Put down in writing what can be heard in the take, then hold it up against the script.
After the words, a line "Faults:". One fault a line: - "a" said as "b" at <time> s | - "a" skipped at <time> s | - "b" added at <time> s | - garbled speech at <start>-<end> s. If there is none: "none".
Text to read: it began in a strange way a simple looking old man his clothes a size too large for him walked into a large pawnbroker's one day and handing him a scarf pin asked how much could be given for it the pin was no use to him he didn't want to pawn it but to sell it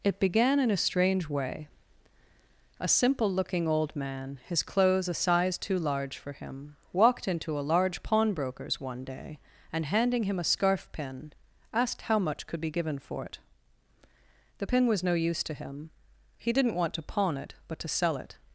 it began in a strange way a simple looking old man his clothes a size too large for him walked into a large pawnbroker's one day and handing him a scarf pin asked how much could be given for it the pin was no use to him he didn't want to pawn it but to sell it
Faults:
none